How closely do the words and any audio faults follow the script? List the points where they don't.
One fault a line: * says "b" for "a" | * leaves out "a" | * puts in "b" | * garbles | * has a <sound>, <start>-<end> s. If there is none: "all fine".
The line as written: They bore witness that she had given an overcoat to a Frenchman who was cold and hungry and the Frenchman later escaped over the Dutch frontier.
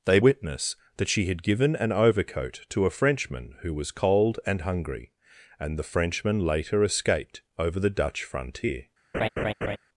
* leaves out "bore"
* has a laugh, 9.1-9.8 s